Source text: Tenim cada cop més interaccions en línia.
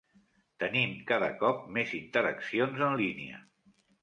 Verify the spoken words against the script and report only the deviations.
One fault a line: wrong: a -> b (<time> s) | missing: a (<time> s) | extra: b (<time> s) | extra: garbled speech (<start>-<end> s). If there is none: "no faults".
no faults